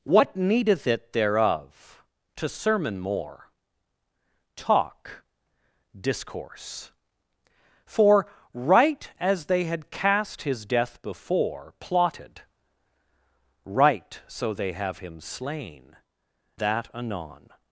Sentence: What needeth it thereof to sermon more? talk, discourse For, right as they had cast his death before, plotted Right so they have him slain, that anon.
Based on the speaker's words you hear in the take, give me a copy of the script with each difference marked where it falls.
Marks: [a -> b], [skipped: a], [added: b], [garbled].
What needeth it thereof to sermon more? talk, discourse For, right as they had cast his death before, plotted Right so they have him slain, that anon.